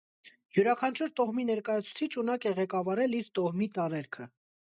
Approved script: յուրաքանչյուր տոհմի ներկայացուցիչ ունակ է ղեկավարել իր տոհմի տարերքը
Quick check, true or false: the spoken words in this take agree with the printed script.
true